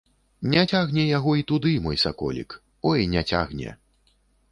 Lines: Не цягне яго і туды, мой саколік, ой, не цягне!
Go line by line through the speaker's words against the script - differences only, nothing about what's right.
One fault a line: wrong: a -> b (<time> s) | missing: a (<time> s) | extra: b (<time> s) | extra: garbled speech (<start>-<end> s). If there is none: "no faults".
no faults